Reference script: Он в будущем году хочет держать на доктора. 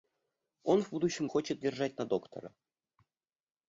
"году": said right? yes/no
no